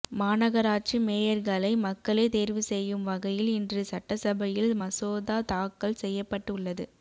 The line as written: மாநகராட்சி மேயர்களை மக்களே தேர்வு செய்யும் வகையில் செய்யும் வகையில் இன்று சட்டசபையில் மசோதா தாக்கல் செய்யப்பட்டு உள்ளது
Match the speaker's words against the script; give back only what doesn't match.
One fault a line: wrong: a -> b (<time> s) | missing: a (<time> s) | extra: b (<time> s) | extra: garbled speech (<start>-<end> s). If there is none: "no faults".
missing: செய்யும் வகையில் (3.5 s)